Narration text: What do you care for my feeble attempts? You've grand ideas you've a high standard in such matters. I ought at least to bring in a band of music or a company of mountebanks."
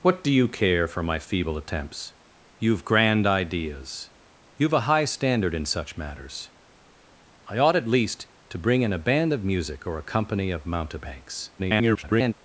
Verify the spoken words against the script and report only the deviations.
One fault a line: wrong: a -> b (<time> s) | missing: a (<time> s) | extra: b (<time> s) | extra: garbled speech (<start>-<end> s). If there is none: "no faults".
extra: garbled speech (11.6-12.3 s)